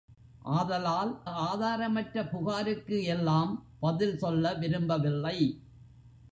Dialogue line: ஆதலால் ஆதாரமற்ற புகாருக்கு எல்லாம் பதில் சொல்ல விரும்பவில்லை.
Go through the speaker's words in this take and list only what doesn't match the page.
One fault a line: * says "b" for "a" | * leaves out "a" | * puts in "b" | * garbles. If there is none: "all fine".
all fine